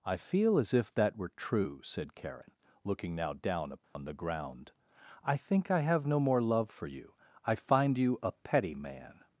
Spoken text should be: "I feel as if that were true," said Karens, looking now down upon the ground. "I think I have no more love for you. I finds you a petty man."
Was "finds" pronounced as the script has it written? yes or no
no